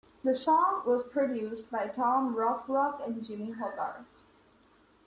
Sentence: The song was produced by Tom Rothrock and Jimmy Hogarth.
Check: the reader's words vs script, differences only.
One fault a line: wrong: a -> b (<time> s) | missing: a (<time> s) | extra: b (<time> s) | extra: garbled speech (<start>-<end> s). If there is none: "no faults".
no faults